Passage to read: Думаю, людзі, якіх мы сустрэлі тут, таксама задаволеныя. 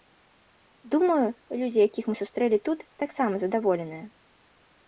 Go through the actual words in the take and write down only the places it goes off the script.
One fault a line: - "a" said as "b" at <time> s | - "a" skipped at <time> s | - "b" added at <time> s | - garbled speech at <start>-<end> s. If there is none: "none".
none